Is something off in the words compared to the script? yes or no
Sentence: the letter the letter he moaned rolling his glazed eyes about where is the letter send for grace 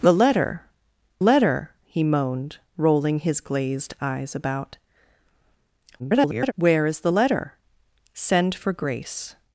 yes